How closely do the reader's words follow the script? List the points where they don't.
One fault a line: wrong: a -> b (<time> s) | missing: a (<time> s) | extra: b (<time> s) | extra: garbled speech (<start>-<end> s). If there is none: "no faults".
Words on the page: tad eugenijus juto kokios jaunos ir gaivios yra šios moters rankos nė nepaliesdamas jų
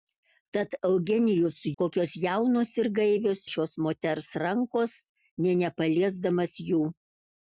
missing: juto (1.6 s)
missing: yra (3.4 s)